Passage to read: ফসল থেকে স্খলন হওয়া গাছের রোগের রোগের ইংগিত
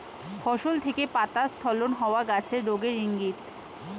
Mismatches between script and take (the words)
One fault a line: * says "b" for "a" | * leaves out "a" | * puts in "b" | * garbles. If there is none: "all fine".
* puts in "পাতা"
* leaves out "রোগের"